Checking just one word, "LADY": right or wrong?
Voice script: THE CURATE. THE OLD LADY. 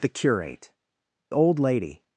right